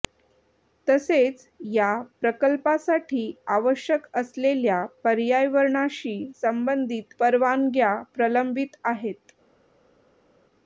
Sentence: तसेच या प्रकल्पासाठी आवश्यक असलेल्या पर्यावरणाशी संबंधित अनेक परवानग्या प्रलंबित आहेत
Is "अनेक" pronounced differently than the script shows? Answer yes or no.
yes